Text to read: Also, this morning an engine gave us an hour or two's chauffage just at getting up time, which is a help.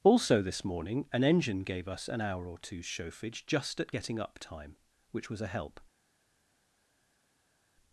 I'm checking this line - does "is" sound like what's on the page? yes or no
no